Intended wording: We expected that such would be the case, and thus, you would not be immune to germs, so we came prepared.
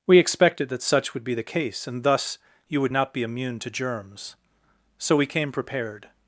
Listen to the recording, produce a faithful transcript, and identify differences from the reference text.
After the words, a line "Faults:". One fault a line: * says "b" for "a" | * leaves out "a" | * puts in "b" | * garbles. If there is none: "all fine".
We expected that such would be the case, and thus, you would not be immune to germs, so we came prepared.
Faults:
all fine